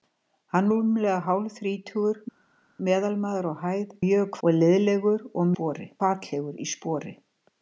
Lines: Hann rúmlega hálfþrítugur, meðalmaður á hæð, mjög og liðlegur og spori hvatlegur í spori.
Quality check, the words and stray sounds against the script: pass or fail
pass